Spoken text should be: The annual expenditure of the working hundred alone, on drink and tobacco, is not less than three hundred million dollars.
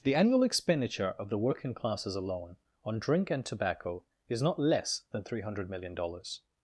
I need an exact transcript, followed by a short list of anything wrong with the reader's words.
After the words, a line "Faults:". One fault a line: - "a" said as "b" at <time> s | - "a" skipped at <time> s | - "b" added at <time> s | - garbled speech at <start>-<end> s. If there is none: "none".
The annual expenditure of the working classes alone, on drink and tobacco, is not less than three hundred million dollars.
Faults:
- "hundred" said as "classes" at 1.8 s